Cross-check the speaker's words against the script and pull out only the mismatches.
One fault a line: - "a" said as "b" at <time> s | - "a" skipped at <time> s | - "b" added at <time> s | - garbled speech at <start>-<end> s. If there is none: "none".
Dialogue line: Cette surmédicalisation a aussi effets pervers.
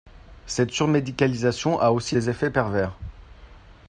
- "des" added at 2.1 s